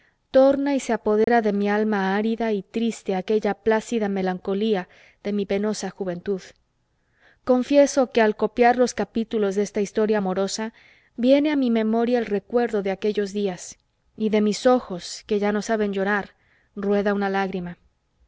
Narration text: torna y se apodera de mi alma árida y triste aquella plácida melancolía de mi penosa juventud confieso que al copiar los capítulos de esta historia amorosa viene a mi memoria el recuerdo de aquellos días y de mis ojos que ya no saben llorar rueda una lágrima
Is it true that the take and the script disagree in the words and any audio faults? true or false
true